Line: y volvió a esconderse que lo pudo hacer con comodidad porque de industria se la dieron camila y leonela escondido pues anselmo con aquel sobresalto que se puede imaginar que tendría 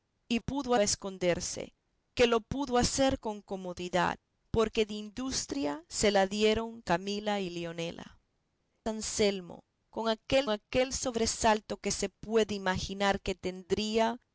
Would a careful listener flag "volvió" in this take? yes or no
yes